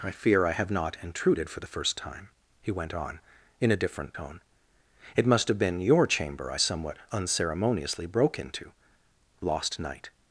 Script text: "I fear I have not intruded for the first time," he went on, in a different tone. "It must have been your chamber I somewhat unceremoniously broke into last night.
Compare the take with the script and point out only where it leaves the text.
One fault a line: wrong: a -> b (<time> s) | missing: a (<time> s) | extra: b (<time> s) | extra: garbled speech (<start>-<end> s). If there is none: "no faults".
wrong: last -> lost (9.4 s)